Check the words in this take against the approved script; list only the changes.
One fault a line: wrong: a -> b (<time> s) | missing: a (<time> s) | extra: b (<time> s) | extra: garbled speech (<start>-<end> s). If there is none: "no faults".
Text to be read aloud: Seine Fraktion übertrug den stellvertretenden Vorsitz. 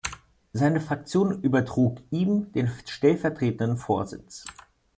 extra: ihm (2.1 s)